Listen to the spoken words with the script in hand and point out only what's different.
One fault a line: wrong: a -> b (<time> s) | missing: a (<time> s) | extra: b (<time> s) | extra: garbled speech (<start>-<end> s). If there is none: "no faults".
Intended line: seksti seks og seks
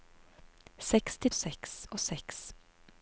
no faults